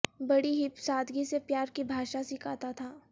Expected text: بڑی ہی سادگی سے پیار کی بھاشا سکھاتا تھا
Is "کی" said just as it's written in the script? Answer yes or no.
yes